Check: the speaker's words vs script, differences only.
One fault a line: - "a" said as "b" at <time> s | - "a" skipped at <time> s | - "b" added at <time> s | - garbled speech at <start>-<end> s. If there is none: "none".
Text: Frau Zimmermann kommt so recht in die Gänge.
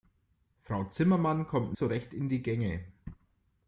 none